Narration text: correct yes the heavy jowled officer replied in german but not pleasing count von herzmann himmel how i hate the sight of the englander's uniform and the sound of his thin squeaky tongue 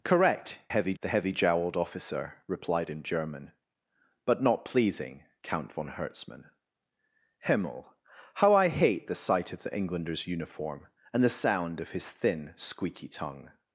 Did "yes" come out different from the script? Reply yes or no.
yes